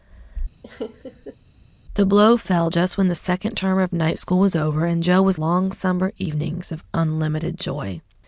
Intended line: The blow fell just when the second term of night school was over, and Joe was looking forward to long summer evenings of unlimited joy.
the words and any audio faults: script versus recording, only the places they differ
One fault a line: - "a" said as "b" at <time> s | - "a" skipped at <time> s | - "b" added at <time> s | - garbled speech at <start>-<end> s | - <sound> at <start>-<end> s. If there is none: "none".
- laugh at 0.6-1.4 s
- "looking forward to" skipped at 5.4 s